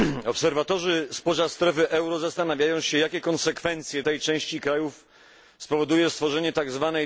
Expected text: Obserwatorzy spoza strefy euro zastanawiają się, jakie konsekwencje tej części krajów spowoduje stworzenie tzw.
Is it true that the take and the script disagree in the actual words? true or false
false